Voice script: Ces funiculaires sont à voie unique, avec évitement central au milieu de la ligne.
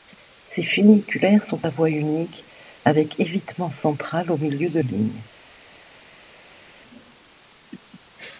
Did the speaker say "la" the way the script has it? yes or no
no